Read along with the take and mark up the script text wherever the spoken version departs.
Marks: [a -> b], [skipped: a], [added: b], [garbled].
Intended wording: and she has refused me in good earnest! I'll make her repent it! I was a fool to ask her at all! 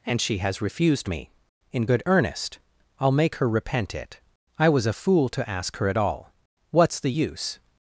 and she has refused me in good earnest! I'll make her repent it! I was a fool to ask her at all! [added: What's the use]